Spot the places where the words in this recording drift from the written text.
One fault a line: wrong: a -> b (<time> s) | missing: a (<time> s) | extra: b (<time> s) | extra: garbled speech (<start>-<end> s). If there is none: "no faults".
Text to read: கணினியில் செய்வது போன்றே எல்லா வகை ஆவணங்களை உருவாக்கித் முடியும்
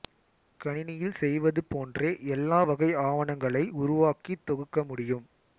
extra: தொகுக்க (4.4 s)